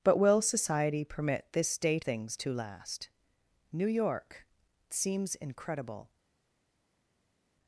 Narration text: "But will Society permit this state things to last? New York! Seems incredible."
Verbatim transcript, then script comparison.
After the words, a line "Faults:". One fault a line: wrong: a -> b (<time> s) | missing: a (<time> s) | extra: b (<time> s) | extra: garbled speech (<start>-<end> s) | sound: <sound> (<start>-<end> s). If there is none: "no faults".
"But will Society permit this state things to last? New York! Seems incredible."
Faults:
no faults